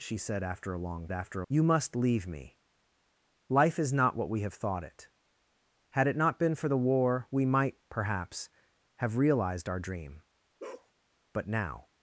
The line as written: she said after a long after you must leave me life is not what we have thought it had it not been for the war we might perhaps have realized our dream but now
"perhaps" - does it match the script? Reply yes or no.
yes